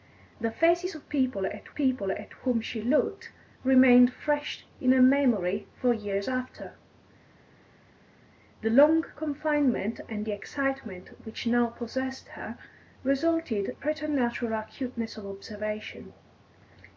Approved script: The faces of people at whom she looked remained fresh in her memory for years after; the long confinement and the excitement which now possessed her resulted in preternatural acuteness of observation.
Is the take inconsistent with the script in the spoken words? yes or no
yes